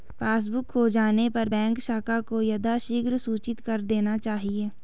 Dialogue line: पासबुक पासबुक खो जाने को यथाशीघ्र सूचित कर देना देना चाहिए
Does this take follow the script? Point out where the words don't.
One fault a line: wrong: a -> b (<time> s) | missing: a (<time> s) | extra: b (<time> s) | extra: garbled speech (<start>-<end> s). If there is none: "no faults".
missing: पासबुक (0.7 s)
extra: पर बैंक शाखा (1.3 s)
missing: देना (4.2 s)